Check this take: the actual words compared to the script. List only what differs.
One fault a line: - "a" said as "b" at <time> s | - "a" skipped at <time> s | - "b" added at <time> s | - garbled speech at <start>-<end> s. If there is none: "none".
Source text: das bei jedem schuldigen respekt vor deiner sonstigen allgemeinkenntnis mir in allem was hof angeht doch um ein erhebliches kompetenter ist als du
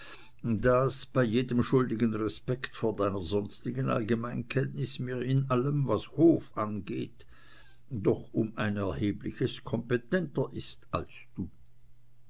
none